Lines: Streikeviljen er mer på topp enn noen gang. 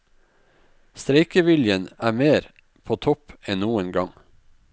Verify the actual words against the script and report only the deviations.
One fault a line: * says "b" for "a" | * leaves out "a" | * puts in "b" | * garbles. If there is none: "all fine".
all fine